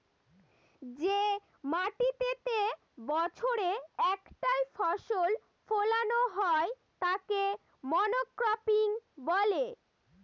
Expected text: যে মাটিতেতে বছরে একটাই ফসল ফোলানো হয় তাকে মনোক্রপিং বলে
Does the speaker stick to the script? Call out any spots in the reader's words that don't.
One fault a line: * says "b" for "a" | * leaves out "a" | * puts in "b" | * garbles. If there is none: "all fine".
all fine